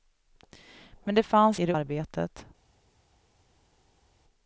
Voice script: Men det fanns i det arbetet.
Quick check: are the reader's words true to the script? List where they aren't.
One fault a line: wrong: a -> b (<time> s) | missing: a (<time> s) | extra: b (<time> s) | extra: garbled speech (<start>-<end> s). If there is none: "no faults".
no faults